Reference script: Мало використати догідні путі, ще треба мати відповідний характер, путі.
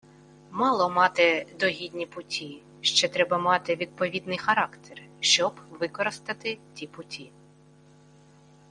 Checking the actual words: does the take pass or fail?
fail